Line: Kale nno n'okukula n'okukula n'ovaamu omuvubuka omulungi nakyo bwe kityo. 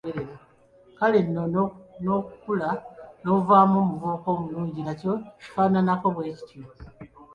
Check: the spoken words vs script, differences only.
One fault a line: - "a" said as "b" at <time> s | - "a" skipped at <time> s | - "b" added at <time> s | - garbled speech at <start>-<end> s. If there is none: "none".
- "n'okukula" skipped at 2.7 s
- "kifaananako" added at 5.4 s